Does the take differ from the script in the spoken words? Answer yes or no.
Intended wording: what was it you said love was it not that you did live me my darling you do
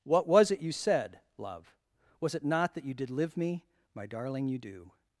no